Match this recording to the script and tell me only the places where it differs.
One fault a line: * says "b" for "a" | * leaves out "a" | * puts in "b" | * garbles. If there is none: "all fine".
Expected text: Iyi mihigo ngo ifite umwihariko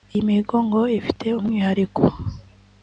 all fine